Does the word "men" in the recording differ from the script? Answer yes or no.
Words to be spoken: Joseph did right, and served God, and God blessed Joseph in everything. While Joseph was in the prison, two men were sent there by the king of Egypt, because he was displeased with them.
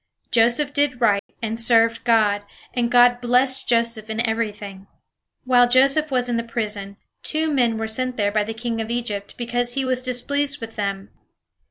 no